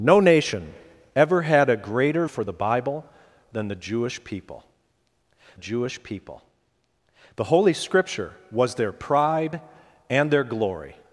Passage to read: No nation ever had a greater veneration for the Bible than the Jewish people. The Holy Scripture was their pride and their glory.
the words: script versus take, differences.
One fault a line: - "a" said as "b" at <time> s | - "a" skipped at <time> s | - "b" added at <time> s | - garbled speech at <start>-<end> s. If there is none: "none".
- "veneration" skipped at 2.2 s
- "Jewish people" added at 5.5 s